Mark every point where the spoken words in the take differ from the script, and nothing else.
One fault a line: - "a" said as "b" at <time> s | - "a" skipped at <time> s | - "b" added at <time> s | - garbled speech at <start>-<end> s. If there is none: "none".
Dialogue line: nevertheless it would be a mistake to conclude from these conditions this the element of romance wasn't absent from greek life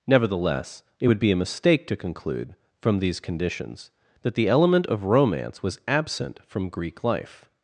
- "this" said as "that" at 4.2 s
- "wasn't" said as "was" at 5.6 s